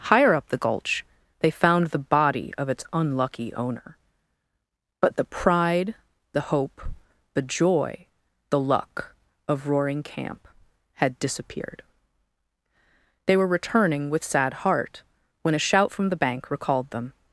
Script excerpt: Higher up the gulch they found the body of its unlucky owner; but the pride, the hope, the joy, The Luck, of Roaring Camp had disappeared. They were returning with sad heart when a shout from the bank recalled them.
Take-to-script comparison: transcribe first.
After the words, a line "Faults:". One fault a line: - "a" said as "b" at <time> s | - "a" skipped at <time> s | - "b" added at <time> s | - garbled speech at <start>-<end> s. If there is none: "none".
Higher up the gulch they found the body of its unlucky owner; but the pride, the hope, the joy, The Luck, of Roaring Camp had disappeared. They were returning with sad heart when a shout from the bank recalled them.
Faults:
none